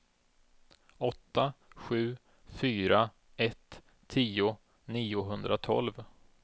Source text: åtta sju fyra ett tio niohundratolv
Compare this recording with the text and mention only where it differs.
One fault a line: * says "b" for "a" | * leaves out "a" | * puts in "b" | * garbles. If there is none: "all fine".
all fine